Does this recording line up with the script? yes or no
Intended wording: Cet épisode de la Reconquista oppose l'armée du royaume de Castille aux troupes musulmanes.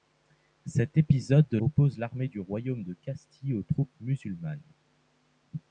no